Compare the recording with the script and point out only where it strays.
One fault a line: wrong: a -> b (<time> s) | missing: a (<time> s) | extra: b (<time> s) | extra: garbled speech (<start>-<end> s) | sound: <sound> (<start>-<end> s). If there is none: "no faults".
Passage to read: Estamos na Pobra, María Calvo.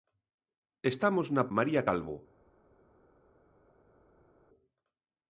missing: Pobra (1.4 s)